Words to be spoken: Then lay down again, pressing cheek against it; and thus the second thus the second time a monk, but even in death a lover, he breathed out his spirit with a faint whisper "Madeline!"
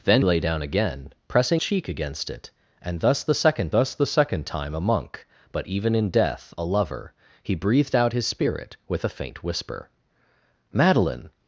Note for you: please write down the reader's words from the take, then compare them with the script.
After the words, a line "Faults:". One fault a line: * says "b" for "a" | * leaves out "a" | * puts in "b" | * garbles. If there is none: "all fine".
Then lay down again, pressing cheek against it; and thus the second thus the second time a monk, but even in death a lover, he breathed out his spirit with a faint whisper "Madeline!"
Faults:
all fine